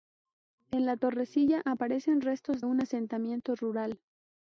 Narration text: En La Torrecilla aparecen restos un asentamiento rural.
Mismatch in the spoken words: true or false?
false